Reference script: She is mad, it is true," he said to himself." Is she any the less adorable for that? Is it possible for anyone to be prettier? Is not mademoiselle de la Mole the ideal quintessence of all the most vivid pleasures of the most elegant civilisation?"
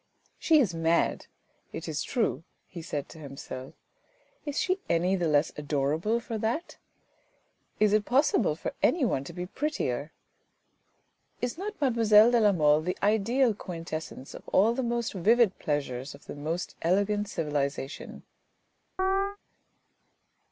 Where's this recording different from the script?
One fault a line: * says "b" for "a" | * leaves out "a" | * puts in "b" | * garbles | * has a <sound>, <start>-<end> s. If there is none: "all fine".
* has a chirp, 19.0-19.4 s